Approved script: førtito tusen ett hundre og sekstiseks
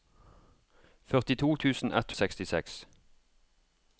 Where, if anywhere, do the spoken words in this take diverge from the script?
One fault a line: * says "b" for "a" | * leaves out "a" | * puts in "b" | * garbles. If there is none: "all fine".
* leaves out "hundre"